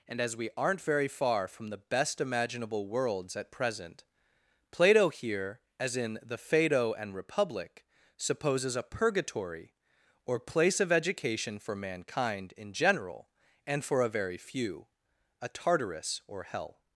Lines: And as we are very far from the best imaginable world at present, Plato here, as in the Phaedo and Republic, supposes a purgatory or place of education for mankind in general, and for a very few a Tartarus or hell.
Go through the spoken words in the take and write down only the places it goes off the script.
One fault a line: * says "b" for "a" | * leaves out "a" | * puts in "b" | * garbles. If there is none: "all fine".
* says "aren't" for "are"
* says "worlds" for "world"